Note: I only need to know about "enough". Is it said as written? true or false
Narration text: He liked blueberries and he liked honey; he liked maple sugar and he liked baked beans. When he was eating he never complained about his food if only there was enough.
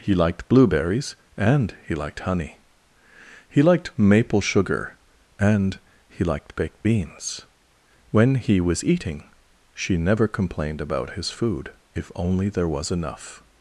true